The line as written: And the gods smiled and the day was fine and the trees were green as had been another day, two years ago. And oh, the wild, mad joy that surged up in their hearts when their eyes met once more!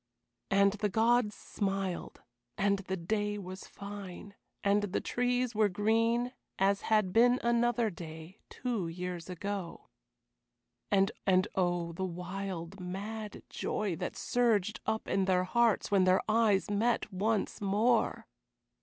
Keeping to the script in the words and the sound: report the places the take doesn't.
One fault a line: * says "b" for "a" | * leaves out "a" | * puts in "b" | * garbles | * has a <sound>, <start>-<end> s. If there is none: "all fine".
* puts in "and"